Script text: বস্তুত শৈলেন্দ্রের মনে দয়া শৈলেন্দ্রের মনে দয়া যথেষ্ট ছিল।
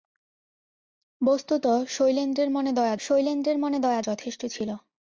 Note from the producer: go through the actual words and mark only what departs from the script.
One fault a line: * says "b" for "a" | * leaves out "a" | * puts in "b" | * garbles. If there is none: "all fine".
all fine